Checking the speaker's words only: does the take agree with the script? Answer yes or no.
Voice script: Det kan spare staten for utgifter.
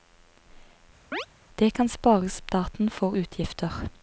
yes